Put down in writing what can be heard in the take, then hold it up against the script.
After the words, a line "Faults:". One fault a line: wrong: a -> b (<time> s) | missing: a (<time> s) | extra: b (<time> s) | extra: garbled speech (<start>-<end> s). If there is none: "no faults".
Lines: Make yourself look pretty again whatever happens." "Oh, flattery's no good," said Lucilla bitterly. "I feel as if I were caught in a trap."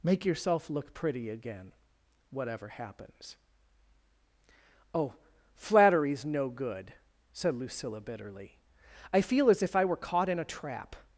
Make yourself look pretty again whatever happens." "Oh, flattery's no good," said Lucilla bitterly. "I feel as if I were caught in a trap."
Faults:
no faults